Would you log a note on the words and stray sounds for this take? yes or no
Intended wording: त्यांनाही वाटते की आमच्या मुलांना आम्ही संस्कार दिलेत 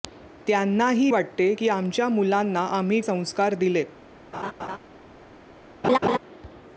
yes